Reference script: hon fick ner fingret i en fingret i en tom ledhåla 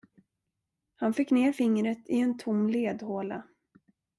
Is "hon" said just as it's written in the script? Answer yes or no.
no